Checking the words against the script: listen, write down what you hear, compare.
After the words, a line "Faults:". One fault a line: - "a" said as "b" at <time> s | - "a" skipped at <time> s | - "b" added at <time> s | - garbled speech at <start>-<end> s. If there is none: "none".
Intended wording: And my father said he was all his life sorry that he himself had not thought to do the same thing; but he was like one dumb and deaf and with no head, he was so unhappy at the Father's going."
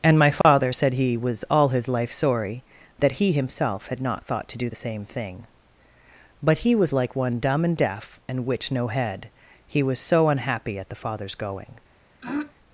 And my father said he was all his life sorry that he himself had not thought to do the same thing; but he was like one dumb and deaf and which no head, he was so unhappy at the Father's going."
Faults:
- "with" said as "which" at 8.5 s